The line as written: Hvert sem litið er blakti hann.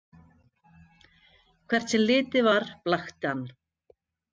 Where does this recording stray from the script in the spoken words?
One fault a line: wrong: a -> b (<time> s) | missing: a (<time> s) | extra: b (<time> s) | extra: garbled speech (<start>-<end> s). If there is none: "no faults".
wrong: er -> var (2.5 s)